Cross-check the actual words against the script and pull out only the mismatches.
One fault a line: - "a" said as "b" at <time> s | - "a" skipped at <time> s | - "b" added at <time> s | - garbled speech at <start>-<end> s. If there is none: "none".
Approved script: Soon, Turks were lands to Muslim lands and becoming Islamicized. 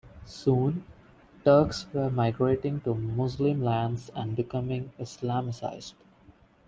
- "lands" said as "migrating" at 2.1 s